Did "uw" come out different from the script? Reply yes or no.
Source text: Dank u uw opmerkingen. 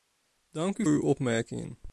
no